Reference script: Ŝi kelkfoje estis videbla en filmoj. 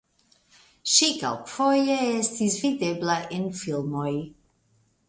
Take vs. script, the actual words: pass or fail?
pass